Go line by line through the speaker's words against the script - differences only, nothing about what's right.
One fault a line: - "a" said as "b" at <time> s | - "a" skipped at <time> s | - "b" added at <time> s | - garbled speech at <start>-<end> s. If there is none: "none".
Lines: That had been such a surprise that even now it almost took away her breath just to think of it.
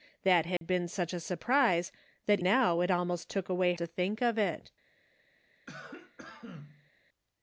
- "even" skipped at 2.4 s
- "her breath just" skipped at 3.7 s